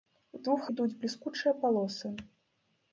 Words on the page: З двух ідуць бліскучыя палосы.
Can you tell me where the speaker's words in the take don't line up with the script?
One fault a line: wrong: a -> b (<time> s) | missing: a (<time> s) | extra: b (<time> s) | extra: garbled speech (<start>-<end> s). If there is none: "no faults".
no faults